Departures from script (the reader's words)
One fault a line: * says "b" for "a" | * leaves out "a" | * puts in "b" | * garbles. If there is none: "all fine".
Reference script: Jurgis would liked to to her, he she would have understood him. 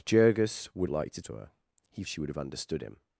all fine